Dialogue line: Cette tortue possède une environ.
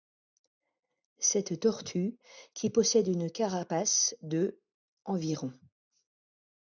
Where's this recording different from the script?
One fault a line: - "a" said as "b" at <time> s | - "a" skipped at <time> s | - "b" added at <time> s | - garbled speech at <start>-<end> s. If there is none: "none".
- "qui" added at 2.5 s
- "carapace de" added at 3.3 s